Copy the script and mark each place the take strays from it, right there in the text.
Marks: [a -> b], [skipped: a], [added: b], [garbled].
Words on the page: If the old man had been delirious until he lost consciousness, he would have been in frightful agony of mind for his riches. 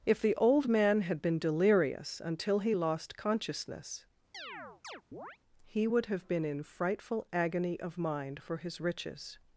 If the old man had been delirious until he lost consciousness, he would have been in frightful agony of mind for his riches.